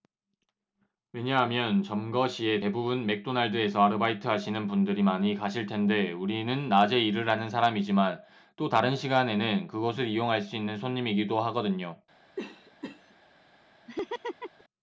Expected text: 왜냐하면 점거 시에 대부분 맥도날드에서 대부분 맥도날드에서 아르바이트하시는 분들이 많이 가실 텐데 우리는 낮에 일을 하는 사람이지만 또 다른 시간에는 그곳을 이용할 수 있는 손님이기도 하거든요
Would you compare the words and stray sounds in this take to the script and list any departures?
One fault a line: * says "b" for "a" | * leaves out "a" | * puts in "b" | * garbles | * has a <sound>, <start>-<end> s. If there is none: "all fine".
* leaves out "대부분 맥도날드에서"
* has a cough, 12.4-13.2 s
* has a laugh, 13.9-14.6 s